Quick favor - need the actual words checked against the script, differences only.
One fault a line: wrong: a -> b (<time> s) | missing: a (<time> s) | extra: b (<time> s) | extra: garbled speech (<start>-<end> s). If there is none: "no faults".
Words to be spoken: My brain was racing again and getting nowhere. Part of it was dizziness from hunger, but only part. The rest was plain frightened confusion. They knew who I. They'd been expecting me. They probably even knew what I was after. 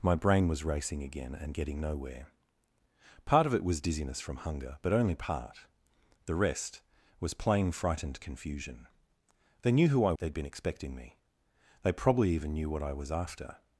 no faults